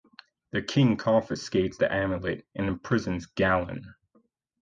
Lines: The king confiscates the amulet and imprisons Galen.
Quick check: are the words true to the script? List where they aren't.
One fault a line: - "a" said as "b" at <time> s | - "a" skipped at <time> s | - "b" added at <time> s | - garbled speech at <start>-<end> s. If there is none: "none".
none